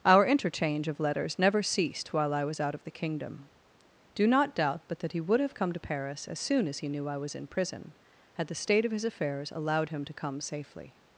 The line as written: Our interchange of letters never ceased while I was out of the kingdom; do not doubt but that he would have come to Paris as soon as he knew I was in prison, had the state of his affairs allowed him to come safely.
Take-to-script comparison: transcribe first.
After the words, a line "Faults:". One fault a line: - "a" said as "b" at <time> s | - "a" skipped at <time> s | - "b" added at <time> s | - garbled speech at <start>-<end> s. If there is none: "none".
Our interchange of letters never ceased while I was out of the kingdom; do not doubt but that he would have come to Paris as soon as he knew I was in prison, had the state of his affairs allowed him to come safely.
Faults:
none